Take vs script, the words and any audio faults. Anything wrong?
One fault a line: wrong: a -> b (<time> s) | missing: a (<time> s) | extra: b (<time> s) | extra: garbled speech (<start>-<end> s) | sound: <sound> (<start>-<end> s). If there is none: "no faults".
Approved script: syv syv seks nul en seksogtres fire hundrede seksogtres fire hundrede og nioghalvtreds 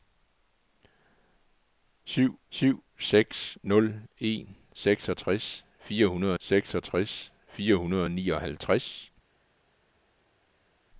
no faults